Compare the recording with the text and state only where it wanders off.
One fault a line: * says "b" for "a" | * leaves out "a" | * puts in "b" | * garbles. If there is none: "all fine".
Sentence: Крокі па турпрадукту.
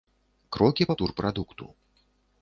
all fine